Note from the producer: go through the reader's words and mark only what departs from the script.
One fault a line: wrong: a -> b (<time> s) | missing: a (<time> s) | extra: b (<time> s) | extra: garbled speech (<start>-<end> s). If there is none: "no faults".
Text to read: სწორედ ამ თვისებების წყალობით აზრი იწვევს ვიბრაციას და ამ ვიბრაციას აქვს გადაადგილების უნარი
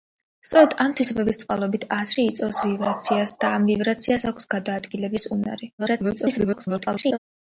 extra: garbled speech (5.8-7.2 s)